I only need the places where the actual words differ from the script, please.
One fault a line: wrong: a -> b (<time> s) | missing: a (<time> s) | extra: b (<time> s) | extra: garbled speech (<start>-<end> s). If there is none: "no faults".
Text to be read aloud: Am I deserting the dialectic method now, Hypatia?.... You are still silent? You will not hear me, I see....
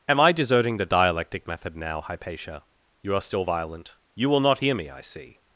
wrong: silent -> violent (3.4 s)